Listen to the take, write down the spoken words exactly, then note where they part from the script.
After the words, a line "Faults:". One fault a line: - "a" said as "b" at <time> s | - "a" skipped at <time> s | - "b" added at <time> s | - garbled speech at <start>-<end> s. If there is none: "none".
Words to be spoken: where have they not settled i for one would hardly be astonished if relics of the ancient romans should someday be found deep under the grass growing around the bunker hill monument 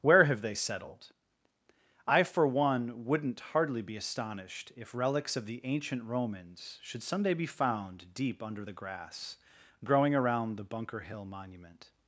where have they settled i for one wouldn't hardly be astonished if relics of the ancient romans should someday be found deep under the grass growing around the bunker hill monument
Faults:
- "not" skipped at 0.6 s
- "would" said as "wouldn't" at 3.0 s